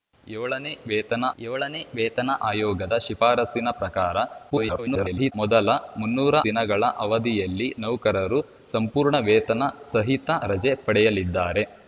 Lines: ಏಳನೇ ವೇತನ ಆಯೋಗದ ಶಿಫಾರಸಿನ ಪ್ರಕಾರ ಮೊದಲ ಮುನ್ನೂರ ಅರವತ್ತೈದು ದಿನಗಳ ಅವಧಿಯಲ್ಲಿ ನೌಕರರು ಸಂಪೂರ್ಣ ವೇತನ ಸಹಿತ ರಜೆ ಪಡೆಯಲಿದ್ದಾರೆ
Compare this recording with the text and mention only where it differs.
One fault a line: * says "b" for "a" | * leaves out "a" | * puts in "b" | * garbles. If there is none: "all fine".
* puts in "ಏಳನೇ ವೇತನ"
* garbles
* leaves out "ಅರವತ್ತೈದು"